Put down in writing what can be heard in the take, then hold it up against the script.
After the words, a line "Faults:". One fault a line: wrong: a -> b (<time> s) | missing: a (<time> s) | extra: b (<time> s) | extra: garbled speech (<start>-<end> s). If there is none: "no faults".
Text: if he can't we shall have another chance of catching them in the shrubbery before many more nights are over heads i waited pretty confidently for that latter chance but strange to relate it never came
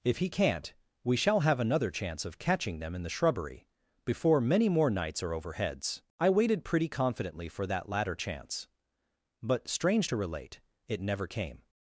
if he can't we shall have another chance of catching them in the shrubbery before many more nights are over heads i waited pretty confidently for that latter chance but strange to relate it never came
Faults:
no faults